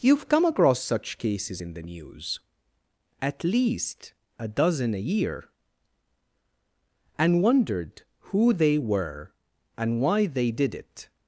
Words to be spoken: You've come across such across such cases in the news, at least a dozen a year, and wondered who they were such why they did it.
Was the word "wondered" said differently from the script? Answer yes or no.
no